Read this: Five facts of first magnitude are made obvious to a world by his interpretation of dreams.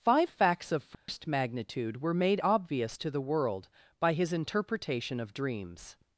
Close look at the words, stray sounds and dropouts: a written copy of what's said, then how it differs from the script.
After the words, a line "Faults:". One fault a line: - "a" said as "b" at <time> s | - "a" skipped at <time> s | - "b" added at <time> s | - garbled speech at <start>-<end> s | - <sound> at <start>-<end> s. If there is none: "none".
Five facts of first magnitude were made obvious to the world by his interpretation of dreams.
Faults:
- dropout at 0.9-1.1 s
- "are" said as "were" at 2.0 s
- "a" said as "the" at 3.1 s